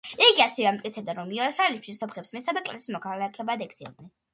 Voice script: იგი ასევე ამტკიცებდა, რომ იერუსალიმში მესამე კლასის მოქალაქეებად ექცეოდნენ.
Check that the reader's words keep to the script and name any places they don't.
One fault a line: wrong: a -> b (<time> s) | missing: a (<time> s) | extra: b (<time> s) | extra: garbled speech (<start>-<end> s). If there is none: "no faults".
extra: სომხებს (2.0 s)